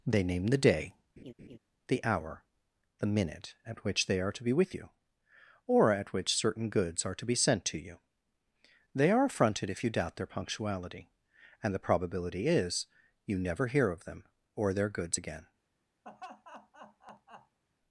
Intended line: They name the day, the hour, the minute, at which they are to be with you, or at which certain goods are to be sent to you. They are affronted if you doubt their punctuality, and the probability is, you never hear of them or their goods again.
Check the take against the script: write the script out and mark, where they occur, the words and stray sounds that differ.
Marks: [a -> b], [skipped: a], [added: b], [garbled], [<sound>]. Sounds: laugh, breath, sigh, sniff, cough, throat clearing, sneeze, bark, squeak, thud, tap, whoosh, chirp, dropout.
They name the day, [laugh] the hour, the minute, at which they are to be with you, or at which certain goods are to be sent to you. They are affronted if you doubt their punctuality, and the probability is, you never hear of them or their goods again. [laugh]